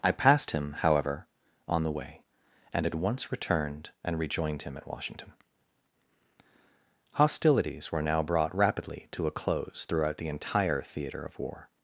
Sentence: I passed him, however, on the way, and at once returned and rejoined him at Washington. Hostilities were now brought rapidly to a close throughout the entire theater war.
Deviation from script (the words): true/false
true